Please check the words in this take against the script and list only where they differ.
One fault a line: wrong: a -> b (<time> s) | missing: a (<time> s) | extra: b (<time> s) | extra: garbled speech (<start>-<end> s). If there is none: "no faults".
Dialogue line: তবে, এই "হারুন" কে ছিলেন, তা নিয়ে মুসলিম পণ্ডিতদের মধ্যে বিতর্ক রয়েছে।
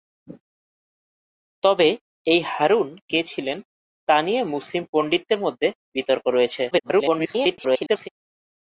extra: garbled speech (6.7-8.1 s)